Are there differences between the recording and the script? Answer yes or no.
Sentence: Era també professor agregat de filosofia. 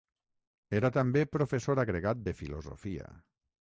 no